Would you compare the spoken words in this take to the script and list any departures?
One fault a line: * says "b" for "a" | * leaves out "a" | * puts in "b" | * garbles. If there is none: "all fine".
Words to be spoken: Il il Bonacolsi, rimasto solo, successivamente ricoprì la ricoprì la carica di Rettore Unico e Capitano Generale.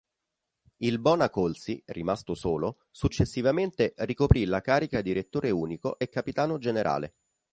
* leaves out "il"
* leaves out "ricoprì la"